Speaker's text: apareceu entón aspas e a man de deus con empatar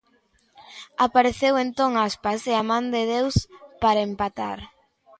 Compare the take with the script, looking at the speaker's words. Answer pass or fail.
fail